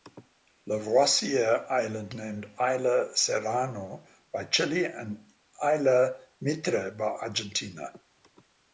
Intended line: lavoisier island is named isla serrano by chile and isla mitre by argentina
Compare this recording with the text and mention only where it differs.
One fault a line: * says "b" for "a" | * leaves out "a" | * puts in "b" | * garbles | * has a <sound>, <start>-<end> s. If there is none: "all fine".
* leaves out "is"